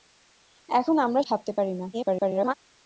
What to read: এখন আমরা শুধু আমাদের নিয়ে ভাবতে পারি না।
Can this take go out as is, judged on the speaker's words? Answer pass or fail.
fail